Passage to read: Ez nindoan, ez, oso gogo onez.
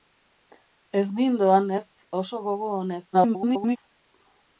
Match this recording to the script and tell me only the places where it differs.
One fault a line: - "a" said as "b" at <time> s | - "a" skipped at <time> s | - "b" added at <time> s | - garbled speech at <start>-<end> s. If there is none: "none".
- garbled speech at 3.1-3.8 s